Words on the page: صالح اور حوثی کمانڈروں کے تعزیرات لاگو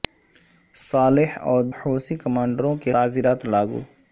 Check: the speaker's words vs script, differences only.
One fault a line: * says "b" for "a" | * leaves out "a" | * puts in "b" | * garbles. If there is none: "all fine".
all fine